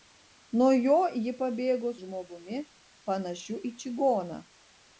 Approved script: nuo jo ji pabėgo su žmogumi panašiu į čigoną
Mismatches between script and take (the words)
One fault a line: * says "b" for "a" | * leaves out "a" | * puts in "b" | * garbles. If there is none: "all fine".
* leaves out "su"